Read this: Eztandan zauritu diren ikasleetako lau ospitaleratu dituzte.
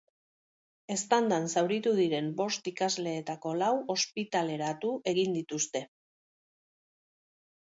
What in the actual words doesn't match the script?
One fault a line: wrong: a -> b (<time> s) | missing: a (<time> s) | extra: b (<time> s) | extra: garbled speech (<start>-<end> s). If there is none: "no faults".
extra: bost (2.4 s)
extra: egin (5.1 s)